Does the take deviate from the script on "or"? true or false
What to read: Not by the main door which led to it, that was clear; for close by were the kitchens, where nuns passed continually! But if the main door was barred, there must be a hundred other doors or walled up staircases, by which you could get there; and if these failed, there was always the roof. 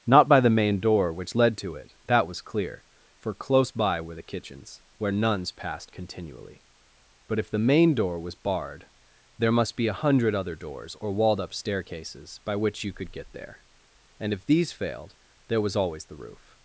false